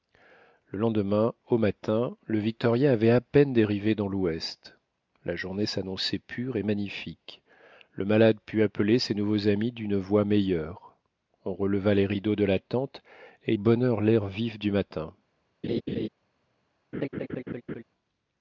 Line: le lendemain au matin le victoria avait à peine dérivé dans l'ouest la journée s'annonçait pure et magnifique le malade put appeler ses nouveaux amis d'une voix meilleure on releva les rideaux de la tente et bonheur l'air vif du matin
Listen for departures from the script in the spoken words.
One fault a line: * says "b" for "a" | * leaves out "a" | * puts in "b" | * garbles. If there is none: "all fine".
all fine